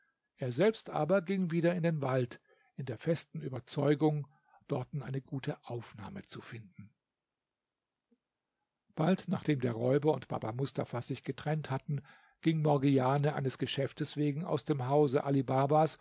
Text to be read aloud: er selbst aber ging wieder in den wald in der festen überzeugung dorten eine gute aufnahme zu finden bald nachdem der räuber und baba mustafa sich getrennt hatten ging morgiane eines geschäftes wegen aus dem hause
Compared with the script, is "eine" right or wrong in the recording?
right